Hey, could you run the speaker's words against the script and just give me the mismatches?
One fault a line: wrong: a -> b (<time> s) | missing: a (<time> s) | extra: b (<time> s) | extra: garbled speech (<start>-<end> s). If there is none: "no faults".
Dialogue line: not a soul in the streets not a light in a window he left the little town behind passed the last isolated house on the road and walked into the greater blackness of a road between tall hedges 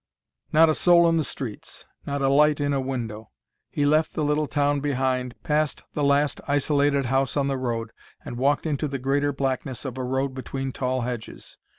no faults